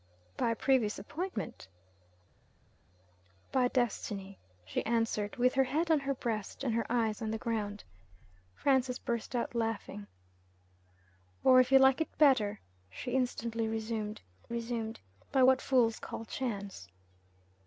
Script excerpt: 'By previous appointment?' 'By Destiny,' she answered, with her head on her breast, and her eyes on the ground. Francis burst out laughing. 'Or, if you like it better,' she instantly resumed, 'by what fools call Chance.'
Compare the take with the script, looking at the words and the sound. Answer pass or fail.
fail